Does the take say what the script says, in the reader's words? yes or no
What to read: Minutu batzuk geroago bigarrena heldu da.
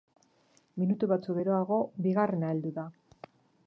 yes